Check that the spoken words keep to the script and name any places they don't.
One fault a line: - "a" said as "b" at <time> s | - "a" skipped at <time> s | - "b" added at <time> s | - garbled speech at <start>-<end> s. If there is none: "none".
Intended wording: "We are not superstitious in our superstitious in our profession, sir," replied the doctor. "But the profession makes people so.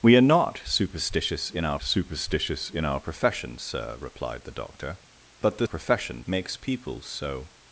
none